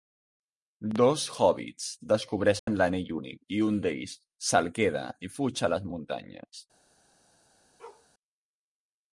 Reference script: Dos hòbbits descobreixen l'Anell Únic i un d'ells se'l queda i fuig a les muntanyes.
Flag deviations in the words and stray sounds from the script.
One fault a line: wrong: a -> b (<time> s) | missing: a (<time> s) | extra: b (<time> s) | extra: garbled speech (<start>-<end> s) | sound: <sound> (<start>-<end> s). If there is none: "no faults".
sound: dropout (2.6-2.7 s)
sound: bark (7.8-8.1 s)